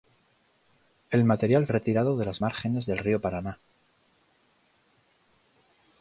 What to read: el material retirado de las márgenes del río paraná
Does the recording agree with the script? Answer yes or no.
yes